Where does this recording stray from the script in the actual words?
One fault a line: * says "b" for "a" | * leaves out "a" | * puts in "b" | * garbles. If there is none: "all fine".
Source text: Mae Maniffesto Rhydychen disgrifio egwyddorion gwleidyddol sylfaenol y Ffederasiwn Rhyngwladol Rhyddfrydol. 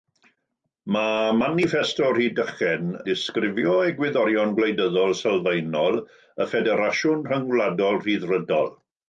all fine